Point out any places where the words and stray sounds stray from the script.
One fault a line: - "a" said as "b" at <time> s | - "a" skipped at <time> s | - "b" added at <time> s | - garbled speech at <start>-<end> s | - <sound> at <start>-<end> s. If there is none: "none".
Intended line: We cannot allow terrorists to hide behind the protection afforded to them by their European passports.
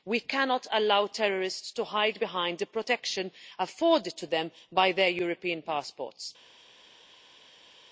none